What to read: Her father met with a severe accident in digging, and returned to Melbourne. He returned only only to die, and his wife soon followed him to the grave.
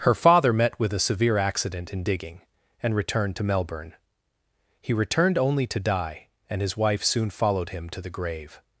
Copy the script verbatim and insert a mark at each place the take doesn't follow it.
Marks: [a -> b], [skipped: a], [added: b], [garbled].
Her father met with a severe accident in digging, and returned to Melbourne. He returned only [skipped: only] to die, and his wife soon followed him to the grave.